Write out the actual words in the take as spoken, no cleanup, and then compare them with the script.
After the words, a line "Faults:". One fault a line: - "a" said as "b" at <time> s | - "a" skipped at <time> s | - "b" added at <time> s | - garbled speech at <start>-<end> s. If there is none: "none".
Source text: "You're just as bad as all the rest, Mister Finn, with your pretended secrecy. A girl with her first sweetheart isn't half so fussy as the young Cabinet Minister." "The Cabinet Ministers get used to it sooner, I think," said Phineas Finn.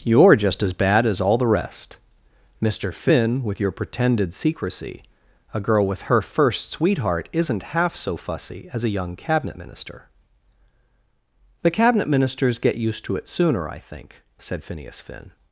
"You're just as bad as all the rest, Mister Finn, with your pretended secrecy. A girl with her first sweetheart isn't half so fussy as a young Cabinet Minister." "The Cabinet Ministers get used to it sooner, I think," said Phineas Finn.
Faults:
- "the" said as "a" at 8.8 s